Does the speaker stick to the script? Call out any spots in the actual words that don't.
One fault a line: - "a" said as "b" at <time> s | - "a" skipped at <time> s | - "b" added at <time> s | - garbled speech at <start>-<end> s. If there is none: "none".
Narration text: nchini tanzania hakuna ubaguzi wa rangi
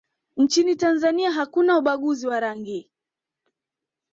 none